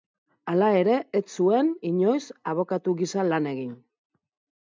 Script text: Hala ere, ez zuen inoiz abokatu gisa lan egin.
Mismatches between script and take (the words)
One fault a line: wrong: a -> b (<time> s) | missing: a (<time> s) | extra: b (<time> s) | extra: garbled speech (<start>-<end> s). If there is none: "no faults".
no faults